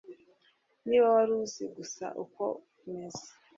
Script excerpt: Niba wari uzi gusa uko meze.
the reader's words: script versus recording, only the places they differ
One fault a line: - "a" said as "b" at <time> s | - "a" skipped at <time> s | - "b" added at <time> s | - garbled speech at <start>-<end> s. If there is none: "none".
none